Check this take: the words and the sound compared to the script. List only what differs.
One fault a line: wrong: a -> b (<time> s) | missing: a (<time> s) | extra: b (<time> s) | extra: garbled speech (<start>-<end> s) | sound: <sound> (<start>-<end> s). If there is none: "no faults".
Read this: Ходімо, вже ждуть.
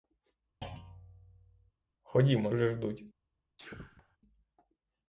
sound: thud (0.6-1.7 s)
sound: sneeze (3.6-4.2 s)